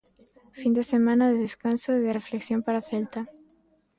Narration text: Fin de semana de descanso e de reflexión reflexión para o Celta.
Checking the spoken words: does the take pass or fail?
fail